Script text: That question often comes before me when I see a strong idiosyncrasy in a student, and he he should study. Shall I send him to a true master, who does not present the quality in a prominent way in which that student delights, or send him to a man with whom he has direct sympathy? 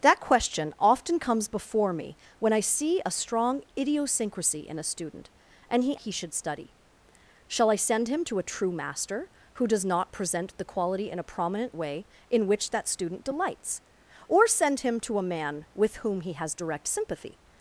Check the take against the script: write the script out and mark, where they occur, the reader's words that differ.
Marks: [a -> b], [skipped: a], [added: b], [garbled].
That question often comes before me when I see a strong idiosyncrasy in a student, and he he should study. Shall I send him to a true master, who does not present the quality in a prominent way in which that student delights, or send him to a man with whom he has direct sympathy?